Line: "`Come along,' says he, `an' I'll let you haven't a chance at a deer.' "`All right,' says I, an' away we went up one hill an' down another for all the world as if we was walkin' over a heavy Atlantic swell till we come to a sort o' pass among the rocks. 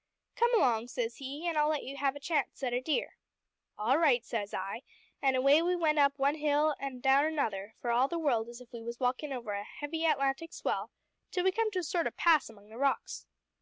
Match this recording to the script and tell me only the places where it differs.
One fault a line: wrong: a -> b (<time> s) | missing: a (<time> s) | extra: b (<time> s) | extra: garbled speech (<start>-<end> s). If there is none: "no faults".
wrong: haven't -> have (2.0 s)